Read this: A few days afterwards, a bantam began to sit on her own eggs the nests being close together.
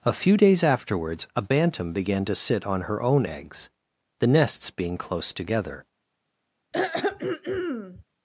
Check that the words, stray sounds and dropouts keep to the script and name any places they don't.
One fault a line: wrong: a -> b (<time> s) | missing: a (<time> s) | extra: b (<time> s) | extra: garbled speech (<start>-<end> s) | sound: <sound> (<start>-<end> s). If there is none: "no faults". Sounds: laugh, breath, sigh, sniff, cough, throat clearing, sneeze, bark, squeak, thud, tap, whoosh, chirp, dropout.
sound: throat clearing (6.7-8.0 s)